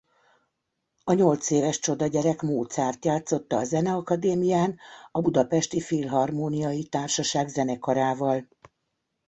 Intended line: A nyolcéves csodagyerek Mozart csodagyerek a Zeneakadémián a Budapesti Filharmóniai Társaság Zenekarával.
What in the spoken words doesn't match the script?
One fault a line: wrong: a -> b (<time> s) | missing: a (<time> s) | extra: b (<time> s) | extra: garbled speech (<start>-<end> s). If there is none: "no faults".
wrong: csodagyerek -> játszotta (3.0 s)